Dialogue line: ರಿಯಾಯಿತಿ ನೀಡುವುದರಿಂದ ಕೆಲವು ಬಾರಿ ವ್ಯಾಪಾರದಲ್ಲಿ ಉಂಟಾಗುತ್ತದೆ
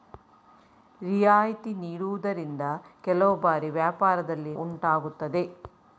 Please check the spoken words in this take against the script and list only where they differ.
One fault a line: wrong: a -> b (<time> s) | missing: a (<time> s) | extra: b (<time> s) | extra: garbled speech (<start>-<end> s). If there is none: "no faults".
no faults